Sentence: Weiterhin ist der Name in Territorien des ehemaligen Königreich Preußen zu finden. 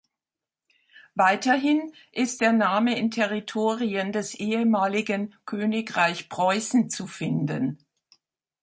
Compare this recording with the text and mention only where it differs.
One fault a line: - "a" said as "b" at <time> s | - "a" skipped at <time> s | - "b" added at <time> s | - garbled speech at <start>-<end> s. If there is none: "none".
none